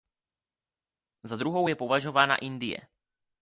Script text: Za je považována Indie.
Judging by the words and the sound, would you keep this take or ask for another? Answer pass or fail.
fail